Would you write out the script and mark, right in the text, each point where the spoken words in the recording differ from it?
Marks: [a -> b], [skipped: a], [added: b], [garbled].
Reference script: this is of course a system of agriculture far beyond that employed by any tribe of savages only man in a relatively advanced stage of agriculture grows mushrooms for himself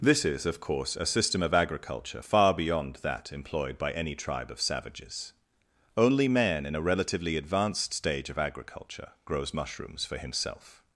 this is of course a system of agriculture far beyond that employed by any tribe of savages only man in a relatively advanced stage of agriculture grows mushrooms for himself